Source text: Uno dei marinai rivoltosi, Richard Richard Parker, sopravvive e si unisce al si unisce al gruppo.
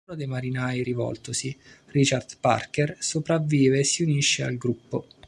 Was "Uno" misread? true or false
false